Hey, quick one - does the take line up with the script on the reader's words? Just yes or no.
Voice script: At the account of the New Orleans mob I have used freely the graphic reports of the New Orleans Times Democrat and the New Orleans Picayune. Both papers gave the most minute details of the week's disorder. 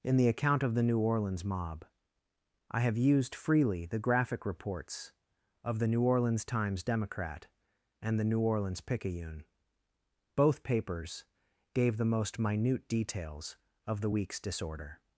no